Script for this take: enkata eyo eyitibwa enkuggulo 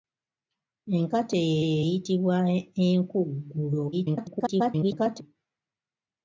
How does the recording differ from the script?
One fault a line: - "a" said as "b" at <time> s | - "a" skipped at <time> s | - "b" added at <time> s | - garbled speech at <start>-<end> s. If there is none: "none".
- "eyo" added at 1.6 s
- garbled speech at 3.9-5.2 s